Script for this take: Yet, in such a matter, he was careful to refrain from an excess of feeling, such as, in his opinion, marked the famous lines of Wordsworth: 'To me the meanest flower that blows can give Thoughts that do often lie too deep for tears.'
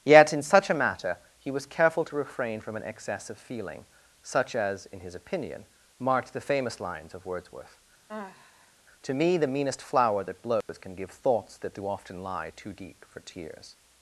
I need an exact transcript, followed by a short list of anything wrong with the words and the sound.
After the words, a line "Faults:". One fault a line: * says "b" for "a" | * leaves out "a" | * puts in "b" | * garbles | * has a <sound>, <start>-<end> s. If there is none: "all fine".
Yet, in such a matter, he was careful to refrain from an excess of feeling, such as, in his opinion, marked the famous lines of Wordsworth: 'To me the meanest flower that blows can give Thoughts that do often lie too deep for tears.'
Faults:
* has a sigh, 8.1-8.7 s
* has a dropout, 10.6-10.7 s